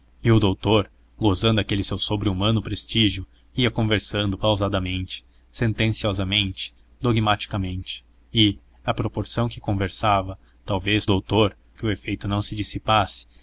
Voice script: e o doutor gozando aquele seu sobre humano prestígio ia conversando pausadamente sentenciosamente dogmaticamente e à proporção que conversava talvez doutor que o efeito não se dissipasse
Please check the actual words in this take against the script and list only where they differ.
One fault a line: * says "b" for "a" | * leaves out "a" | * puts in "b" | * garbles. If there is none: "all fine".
all fine